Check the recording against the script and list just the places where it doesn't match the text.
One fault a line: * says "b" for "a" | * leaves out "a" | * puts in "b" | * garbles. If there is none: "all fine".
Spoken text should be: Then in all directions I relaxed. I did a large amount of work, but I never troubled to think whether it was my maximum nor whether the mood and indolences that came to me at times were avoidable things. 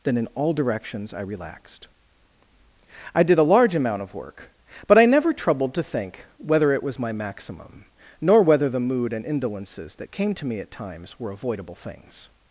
all fine